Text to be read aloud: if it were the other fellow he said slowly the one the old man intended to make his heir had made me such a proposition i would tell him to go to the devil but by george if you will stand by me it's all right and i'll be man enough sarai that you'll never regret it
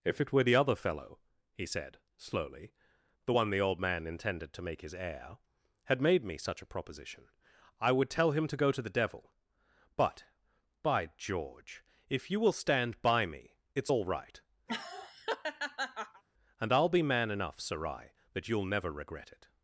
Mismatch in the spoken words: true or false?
false